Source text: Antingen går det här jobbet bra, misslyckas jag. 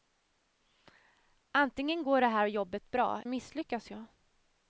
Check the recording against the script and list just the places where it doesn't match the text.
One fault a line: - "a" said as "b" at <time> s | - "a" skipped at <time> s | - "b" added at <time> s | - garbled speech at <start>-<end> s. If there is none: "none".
none